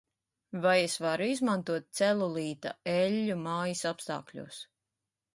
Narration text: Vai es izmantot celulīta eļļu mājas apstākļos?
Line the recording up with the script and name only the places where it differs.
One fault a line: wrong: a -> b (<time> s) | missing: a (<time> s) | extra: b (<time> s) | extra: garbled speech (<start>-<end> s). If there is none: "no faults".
extra: varu (1.0 s)